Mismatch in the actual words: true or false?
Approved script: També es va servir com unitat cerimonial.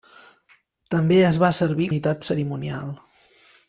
true